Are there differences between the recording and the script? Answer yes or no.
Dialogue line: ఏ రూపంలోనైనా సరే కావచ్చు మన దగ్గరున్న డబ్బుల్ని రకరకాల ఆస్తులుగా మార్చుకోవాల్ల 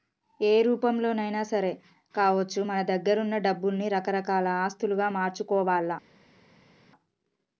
no